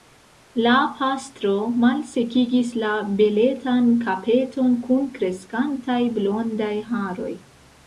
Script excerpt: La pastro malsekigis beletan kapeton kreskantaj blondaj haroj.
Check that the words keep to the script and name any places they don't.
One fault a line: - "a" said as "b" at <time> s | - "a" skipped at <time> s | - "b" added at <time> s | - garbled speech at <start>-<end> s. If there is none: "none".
- "la" added at 2.9 s
- "kun" added at 4.9 s